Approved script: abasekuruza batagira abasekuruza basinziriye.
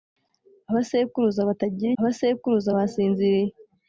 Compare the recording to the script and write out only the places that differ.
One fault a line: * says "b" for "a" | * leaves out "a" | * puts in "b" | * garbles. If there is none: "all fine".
all fine